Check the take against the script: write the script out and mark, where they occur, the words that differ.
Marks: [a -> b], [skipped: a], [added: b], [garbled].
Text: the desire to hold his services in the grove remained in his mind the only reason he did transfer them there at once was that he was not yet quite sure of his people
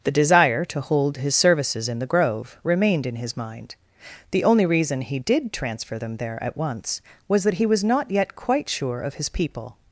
the desire to hold his services in the grove remained in his mind the only reason he did transfer them there at once was that he was not yet quite sure of his people